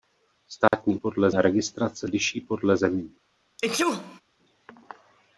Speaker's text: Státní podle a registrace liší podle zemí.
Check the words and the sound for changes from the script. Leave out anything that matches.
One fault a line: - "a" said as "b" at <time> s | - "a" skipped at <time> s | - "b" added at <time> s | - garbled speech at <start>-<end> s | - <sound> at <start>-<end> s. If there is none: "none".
- dropout at 0.7-0.7 s
- sneeze at 3.6-4.2 s